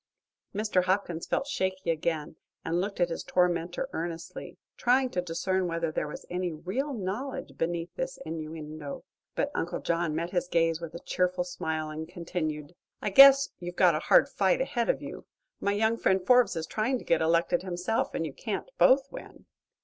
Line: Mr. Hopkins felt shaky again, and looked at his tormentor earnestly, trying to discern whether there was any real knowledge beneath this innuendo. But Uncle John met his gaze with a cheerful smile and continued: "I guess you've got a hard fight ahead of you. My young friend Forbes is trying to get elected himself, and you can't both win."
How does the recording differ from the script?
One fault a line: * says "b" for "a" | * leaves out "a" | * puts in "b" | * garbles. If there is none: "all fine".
all fine